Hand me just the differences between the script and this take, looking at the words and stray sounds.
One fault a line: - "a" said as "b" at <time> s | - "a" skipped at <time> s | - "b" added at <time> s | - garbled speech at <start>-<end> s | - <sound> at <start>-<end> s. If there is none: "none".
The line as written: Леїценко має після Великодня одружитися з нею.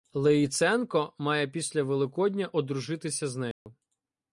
- dropout at 3.5-3.7 s